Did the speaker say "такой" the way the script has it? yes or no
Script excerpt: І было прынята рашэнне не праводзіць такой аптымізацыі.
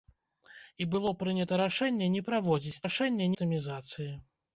no